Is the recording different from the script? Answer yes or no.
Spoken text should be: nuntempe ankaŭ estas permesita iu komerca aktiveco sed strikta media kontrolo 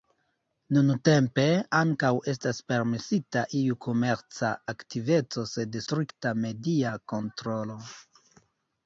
no